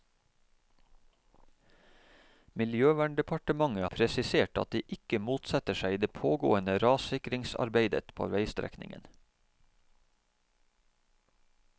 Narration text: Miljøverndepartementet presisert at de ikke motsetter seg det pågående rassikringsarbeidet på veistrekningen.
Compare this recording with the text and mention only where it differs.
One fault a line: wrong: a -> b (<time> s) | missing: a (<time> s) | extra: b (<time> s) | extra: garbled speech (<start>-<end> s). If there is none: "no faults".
no faults